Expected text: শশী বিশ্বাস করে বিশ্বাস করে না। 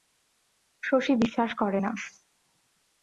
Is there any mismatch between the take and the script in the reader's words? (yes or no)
yes